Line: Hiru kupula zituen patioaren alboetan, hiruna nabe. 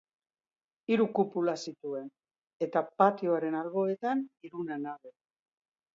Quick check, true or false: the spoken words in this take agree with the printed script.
false